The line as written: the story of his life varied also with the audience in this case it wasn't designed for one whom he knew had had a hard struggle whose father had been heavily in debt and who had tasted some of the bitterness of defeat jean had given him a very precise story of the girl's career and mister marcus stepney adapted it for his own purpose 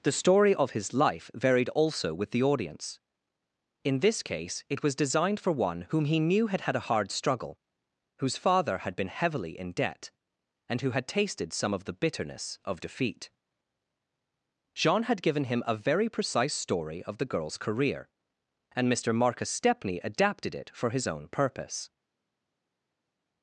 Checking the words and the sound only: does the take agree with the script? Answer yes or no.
no